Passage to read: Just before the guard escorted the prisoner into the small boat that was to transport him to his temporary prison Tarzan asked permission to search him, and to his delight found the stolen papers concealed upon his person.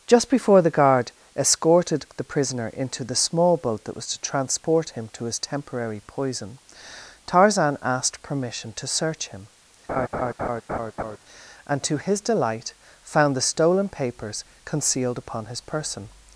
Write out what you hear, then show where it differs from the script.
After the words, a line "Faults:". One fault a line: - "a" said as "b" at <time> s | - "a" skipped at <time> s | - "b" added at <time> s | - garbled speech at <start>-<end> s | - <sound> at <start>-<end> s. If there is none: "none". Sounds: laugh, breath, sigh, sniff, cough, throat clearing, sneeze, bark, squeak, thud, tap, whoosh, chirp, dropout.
Just before the guard escorted the prisoner into the small boat that was to transport him to his temporary poison Tarzan asked permission to search him, and to his delight found the stolen papers concealed upon his person.
Faults:
- "prison" said as "poison" at 6.0 s
- laugh at 9.9-11.2 s